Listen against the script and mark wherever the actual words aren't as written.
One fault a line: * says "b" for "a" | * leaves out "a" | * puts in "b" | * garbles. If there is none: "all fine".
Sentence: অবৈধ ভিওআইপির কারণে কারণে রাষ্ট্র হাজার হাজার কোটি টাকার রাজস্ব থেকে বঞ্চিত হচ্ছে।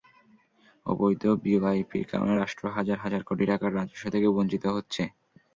* leaves out "কারণে"